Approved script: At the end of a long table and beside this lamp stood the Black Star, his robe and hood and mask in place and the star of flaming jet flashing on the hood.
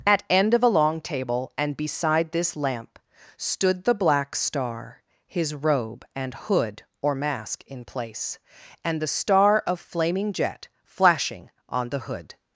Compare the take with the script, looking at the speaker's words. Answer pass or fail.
fail